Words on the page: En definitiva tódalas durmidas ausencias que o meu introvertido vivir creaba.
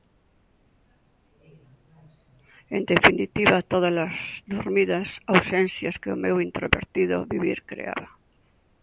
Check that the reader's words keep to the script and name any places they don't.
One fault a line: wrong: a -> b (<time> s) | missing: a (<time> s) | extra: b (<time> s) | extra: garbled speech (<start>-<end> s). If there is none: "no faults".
no faults